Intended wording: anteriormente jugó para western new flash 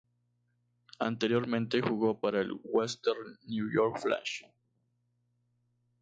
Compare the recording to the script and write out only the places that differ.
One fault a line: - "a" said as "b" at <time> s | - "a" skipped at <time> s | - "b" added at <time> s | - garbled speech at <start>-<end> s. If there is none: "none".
- "el" added at 2.4 s
- "york" added at 3.7 s